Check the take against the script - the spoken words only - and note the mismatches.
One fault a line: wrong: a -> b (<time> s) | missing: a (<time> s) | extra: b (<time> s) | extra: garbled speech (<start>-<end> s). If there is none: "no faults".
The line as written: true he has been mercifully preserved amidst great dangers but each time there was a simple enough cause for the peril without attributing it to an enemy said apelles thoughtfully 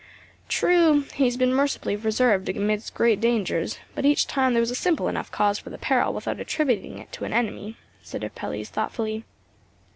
no faults